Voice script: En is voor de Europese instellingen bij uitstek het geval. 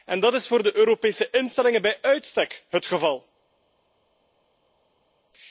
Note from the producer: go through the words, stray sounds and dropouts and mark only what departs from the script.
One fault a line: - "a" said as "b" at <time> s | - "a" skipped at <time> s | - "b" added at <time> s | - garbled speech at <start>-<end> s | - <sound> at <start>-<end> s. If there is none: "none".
- "dat" added at 0.2 s